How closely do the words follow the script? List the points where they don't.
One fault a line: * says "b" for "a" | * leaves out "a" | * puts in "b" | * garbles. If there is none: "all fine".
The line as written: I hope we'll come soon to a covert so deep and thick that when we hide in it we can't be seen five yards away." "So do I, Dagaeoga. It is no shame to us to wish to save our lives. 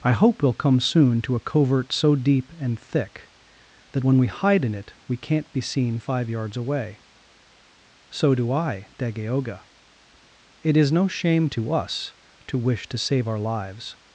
all fine